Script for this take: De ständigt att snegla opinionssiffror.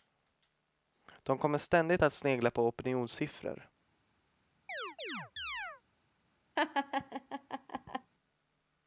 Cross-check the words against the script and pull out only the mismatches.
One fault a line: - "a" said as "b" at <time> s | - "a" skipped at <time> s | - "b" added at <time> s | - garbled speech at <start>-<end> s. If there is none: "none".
- "kommer" added at 1.4 s
- "på" added at 2.5 s